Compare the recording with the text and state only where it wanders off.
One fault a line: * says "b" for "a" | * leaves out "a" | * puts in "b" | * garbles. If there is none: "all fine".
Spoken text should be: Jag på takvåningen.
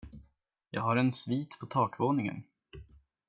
* puts in "har en svit"